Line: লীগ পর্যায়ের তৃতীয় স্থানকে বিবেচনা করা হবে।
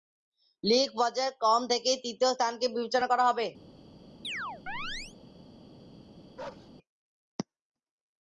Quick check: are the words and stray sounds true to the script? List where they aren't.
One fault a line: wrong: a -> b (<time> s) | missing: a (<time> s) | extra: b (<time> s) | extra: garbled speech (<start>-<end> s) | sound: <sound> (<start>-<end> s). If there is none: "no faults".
extra: ক্রম থেকেই (1.4 s)
sound: chirp (4.2-5.2 s)
sound: bark (6.4-6.7 s)